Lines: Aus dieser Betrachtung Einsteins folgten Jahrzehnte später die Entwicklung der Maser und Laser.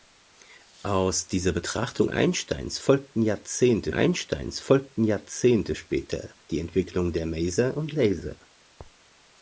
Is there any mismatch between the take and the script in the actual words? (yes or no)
yes